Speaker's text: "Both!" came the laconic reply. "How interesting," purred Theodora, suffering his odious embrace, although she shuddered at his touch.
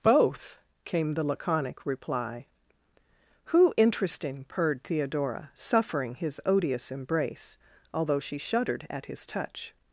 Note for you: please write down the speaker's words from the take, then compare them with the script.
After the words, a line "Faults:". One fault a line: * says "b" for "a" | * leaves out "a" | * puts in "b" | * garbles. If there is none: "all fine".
"Both!" came the laconic reply. "Who interesting," purred Theodora, suffering his odious embrace, although she shuddered at his touch.
Faults:
* says "Who" for "How"